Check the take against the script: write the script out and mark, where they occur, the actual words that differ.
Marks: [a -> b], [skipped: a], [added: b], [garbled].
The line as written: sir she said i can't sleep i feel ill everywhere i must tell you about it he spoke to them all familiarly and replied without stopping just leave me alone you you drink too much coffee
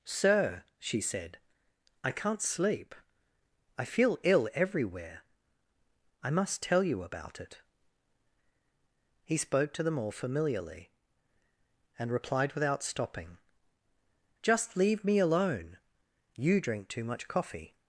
sir she said i can't sleep i feel ill everywhere i must tell you about it he spoke to them all familiarly and replied without stopping just leave me alone you [skipped: you] drink too much coffee